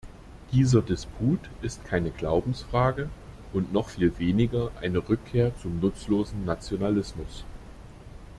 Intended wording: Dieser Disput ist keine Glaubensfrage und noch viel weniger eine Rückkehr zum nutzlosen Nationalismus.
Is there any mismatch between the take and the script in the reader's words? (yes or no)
no